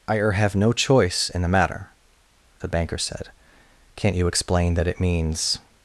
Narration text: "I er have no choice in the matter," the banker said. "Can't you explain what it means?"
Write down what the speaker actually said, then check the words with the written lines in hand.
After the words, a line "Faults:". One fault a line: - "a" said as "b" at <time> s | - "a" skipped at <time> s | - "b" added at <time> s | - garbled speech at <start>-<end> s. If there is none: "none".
"I er have no choice in the matter," the banker said. "Can't you explain that it means?"
Faults:
- "what" said as "that" at 4.7 s